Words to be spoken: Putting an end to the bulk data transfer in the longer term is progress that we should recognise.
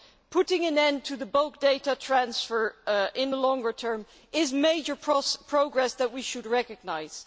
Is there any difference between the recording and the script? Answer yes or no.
yes